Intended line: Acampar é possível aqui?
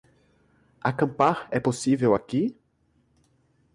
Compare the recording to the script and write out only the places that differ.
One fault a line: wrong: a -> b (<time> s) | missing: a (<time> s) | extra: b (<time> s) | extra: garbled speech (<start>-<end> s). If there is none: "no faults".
no faults